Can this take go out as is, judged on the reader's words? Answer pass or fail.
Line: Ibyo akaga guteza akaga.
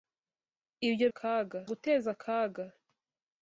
pass